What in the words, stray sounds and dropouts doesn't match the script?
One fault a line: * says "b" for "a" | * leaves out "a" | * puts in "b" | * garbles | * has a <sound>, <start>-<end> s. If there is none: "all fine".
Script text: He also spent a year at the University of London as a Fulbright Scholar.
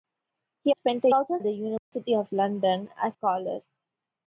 * leaves out "also"
* says "also" for "year"
* has a dropout, 1.8-1.9 s
* leaves out "a Fulbright"